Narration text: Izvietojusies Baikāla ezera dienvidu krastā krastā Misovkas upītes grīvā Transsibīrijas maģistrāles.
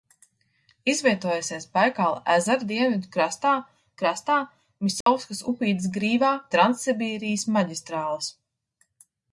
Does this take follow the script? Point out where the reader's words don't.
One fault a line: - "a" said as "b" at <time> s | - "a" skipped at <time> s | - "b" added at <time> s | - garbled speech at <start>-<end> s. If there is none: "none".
none